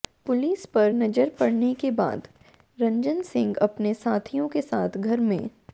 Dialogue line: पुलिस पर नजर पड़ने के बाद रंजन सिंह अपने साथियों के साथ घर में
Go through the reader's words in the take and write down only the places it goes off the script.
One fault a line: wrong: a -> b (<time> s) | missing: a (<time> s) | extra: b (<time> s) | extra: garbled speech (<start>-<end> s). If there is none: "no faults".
no faults